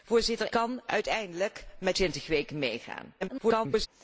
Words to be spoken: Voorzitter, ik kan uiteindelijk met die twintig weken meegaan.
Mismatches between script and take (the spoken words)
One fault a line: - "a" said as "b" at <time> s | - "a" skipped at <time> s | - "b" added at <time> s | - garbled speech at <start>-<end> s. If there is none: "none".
- "ik" skipped at 0.5 s
- "die" skipped at 2.0 s
- garbled speech at 3.2-3.9 s